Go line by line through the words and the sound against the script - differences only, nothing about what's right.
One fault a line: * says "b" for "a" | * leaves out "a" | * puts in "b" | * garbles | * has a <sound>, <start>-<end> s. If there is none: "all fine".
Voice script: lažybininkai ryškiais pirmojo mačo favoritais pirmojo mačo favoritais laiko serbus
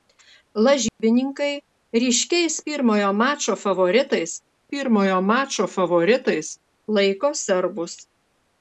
* has a dropout, 0.9-1.0 s